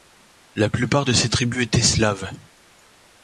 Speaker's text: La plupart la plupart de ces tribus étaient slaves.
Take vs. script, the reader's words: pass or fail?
fail